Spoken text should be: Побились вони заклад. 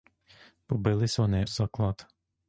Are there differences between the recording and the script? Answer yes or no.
no